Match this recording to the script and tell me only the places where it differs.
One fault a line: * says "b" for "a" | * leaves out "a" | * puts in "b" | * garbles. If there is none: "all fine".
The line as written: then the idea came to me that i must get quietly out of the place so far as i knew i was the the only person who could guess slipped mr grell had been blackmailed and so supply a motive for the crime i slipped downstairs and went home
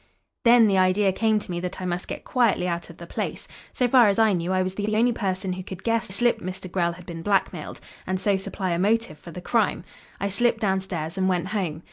all fine